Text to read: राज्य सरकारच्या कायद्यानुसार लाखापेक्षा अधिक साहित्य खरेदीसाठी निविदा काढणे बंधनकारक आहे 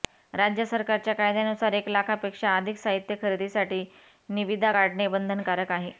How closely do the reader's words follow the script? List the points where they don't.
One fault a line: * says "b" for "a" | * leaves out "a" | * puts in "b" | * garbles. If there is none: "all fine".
* puts in "एक"